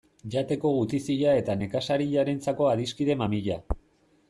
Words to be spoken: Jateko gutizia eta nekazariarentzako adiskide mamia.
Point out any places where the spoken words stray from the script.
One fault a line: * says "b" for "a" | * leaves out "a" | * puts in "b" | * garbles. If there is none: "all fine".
all fine